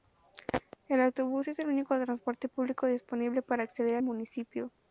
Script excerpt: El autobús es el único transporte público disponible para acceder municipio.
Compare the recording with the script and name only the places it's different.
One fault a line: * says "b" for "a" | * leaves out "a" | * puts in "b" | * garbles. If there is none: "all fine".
all fine